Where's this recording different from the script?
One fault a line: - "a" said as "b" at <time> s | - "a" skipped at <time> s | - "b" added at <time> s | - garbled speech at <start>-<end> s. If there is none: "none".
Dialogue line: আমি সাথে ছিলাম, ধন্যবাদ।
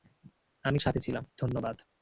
none